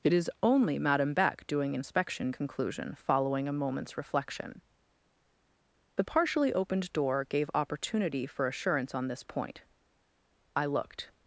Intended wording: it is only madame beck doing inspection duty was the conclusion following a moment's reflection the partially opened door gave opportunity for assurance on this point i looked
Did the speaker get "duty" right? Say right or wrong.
wrong